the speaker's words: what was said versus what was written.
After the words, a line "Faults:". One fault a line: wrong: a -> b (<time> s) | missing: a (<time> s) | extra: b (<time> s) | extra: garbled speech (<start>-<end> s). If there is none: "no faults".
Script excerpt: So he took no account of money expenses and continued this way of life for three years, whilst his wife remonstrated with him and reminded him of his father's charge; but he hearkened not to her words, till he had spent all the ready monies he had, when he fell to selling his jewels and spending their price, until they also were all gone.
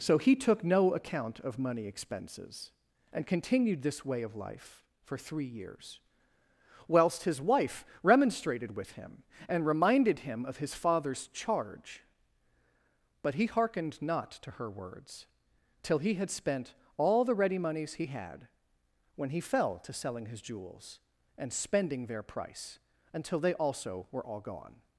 So he took no account of money expenses and continued this way of life for three years, whilst his wife remonstrated with him and reminded him of his father's charge; but he hearkened not to her words, till he had spent all the ready monies he had, when he fell to selling his jewels and spending their price, until they also were all gone.
Faults:
no faults